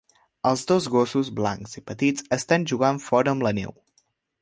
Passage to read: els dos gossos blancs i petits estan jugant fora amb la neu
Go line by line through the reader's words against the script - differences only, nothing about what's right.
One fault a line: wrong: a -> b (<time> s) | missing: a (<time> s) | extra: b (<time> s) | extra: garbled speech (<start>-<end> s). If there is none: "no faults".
no faults